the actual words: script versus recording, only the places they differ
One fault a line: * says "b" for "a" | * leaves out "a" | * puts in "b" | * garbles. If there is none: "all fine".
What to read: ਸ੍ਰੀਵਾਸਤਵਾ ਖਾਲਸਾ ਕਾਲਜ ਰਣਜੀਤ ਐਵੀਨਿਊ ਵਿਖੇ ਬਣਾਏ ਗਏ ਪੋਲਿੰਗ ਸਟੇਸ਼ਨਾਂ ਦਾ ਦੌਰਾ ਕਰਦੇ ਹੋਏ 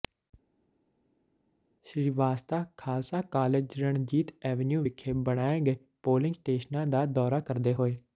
all fine